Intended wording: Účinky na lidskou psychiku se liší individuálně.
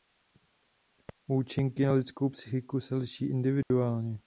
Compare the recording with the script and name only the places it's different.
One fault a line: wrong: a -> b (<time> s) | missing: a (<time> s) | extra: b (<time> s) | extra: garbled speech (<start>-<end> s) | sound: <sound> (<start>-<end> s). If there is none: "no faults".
sound: dropout (3.6-3.7 s)